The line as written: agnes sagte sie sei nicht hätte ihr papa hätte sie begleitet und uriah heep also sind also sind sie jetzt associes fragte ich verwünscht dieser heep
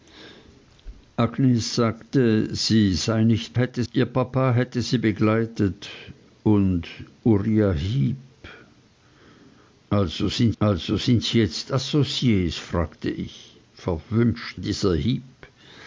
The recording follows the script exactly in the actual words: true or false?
true